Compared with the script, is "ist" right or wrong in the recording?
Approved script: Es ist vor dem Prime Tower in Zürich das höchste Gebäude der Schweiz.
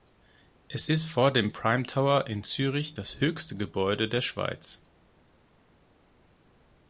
right